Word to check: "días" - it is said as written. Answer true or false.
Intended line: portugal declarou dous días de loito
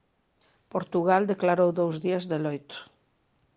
true